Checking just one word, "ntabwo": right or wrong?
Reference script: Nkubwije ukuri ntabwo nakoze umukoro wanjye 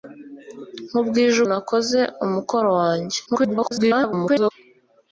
wrong